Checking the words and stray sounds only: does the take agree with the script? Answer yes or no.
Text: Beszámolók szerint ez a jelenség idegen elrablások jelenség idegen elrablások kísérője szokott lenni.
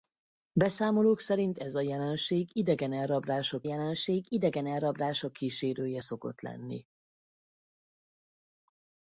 yes